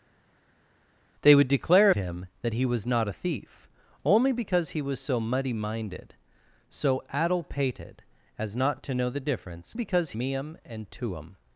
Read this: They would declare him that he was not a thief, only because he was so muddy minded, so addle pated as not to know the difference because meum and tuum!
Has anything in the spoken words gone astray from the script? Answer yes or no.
no